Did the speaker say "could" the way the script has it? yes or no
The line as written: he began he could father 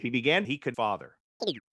yes